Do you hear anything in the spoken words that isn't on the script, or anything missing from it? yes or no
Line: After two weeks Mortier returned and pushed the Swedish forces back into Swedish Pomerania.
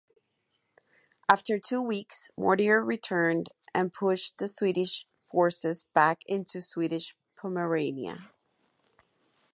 no